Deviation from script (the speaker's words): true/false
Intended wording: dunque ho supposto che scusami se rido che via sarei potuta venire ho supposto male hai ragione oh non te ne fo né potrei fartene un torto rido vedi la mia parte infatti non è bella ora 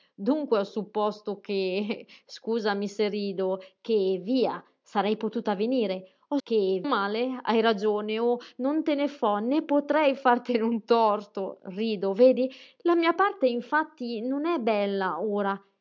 true